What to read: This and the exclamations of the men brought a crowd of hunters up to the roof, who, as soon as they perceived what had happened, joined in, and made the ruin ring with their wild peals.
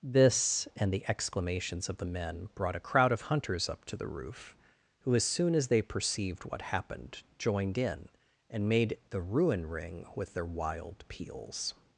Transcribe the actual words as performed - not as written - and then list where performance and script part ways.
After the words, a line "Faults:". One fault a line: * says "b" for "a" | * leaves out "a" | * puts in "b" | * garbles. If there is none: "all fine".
This and the exclamations of the men brought a crowd of hunters up to the roof, who, as soon as they perceived what happened, joined in, and made the ruin ring with their wild peals.
Faults:
* leaves out "had"